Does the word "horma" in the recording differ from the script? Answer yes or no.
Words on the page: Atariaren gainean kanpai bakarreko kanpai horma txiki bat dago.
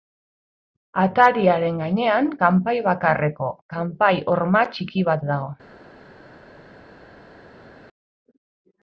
no